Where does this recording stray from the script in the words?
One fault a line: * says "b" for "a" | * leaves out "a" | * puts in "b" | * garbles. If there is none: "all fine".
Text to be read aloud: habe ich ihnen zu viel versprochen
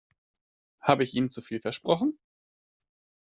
all fine